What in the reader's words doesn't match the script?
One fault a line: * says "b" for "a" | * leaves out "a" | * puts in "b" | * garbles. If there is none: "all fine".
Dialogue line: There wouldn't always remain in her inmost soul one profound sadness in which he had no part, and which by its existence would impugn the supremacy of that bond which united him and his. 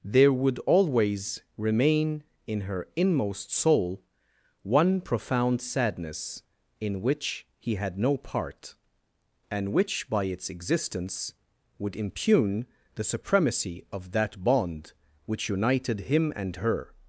* says "would" for "wouldn't"
* says "her" for "his"